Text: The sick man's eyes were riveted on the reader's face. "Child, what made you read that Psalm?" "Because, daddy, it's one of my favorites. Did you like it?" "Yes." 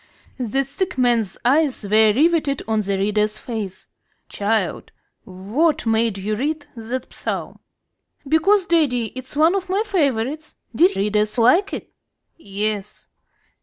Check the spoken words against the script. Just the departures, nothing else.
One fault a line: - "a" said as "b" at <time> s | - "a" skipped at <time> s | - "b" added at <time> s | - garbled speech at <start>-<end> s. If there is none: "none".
- "you" said as "reader's" at 11.0 s